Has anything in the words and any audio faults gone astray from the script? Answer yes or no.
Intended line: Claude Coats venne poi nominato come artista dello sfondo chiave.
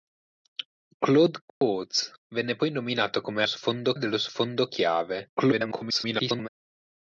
yes